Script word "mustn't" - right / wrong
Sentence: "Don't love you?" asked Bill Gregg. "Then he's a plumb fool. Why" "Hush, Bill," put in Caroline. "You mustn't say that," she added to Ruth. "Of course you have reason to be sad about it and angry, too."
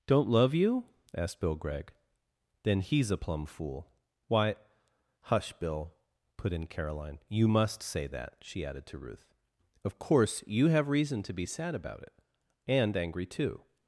wrong